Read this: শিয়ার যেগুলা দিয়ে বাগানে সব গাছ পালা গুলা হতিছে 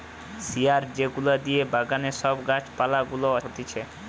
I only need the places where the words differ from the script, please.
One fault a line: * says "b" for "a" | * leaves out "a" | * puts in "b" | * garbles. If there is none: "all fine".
all fine